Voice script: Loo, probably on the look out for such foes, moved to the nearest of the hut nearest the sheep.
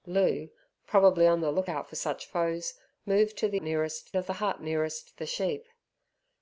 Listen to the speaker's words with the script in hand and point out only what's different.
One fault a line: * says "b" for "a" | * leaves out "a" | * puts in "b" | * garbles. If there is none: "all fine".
all fine